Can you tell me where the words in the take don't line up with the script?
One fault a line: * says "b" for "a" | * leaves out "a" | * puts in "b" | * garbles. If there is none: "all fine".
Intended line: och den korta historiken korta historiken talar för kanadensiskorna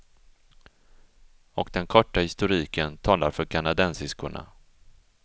* leaves out "korta historiken"